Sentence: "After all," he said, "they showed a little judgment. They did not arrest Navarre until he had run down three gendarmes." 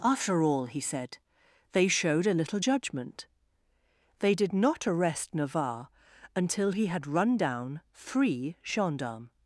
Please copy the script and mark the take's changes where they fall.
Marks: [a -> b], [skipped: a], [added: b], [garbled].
"After all," he said, "they showed a little judgment. They did not arrest Navarre until he had run down three gendarmes."